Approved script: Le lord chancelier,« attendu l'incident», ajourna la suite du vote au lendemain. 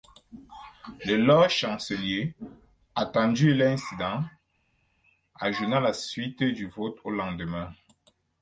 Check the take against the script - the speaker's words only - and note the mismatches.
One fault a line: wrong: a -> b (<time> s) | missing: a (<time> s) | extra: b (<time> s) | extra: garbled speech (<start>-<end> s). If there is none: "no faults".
no faults